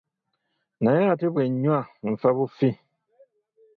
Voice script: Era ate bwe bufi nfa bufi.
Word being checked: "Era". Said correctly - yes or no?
no